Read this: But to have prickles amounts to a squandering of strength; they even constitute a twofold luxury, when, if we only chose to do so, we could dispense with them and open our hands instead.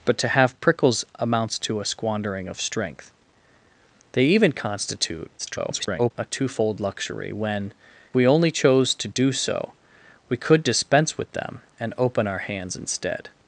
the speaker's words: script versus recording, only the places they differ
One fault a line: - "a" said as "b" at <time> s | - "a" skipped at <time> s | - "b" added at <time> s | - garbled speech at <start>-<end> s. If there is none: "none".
- garbled speech at 5.4-6.1 s
- "if" skipped at 7.7 s